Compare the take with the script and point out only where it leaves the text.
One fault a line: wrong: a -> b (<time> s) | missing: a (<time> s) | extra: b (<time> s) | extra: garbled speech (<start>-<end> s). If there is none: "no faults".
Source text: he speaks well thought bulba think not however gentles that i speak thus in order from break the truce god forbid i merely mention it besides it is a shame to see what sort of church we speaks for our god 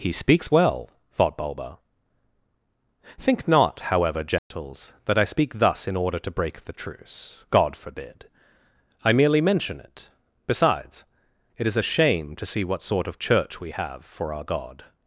wrong: from -> to (6.2 s)
wrong: speaks -> have (13.7 s)